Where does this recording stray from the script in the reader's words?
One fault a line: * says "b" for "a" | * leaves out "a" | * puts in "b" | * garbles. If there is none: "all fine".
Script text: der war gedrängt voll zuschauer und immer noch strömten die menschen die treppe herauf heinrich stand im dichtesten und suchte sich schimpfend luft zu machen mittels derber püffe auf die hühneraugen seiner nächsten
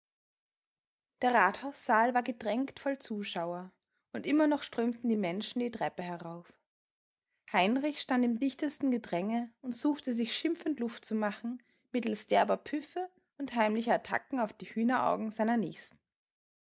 * puts in "rathaussaal"
* puts in "gedränge"
* puts in "und heimlicher attacken"